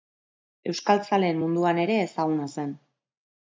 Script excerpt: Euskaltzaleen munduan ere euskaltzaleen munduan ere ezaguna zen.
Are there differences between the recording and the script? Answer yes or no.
yes